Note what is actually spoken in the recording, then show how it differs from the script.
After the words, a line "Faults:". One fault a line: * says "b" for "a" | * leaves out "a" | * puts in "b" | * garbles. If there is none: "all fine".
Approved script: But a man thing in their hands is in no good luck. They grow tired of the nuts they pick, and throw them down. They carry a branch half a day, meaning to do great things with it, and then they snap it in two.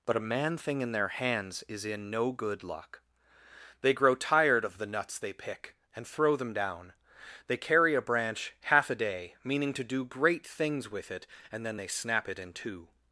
But a man thing in their hands is in no good luck. They grow tired of the nuts they pick, and throw them down. They carry a branch half a day, meaning to do great things with it, and then they snap it in two.
Faults:
all fine